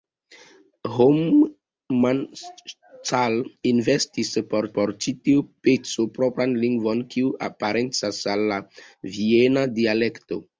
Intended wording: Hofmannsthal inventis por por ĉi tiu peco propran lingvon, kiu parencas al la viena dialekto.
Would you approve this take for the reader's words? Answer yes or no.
yes